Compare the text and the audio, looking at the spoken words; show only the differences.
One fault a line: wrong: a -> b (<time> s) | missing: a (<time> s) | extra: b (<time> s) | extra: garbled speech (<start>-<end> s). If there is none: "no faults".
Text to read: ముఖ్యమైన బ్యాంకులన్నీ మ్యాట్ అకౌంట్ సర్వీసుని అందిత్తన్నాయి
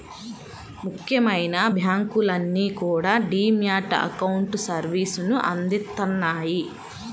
extra: కూడా డీ (2.8 s)